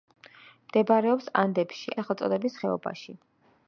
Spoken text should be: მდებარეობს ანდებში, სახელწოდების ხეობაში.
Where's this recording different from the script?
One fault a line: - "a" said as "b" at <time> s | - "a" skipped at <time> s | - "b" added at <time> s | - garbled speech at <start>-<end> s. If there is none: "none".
none